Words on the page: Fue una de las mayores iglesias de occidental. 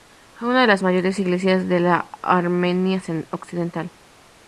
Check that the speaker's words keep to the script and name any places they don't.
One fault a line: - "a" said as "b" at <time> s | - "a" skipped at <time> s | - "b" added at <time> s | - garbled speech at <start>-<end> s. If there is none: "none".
- "la Armenia" added at 1.8 s